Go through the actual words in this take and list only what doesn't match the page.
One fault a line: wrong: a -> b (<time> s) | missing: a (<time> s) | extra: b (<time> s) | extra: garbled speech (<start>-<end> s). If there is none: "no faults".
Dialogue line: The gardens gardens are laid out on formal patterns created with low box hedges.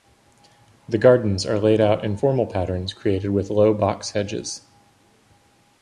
missing: gardens (1.4 s)
wrong: on -> in (2.0 s)